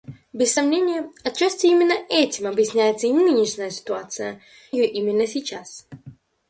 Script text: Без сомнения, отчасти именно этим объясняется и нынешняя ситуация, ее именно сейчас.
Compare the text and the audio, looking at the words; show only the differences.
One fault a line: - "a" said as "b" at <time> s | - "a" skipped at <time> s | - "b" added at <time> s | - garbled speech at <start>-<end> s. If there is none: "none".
none